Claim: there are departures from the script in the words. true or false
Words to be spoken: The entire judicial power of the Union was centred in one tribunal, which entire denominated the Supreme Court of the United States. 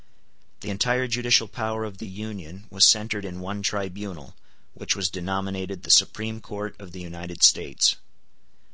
true